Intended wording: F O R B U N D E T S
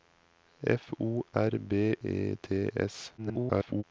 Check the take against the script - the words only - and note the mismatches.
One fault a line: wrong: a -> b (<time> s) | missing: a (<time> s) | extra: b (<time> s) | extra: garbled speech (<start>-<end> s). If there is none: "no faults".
missing: U N D (1.9 s)
extra: garbled speech (3.2-3.8 s)